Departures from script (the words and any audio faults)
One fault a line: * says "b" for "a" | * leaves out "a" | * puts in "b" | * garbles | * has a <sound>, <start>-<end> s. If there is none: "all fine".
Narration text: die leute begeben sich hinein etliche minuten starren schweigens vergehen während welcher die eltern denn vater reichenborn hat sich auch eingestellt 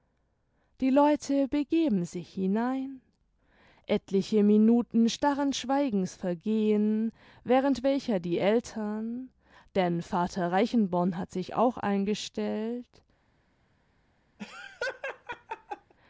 * has a laugh, 14.4-15.9 s